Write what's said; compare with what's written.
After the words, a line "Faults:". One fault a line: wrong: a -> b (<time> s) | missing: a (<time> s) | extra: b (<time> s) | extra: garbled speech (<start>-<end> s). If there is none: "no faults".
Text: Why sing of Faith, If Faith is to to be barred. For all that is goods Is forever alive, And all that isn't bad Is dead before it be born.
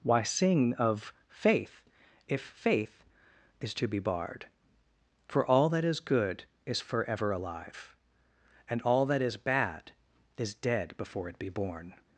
Why sing of Faith, If Faith is to be barred. For all that is good Is forever alive, And all that is bad Is dead before it be born.
Faults:
missing: to (3.9 s)
wrong: goods -> good (6.0 s)
wrong: isn't -> is (9.2 s)